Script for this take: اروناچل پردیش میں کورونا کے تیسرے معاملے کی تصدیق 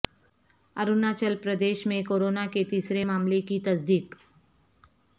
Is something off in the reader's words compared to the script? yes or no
no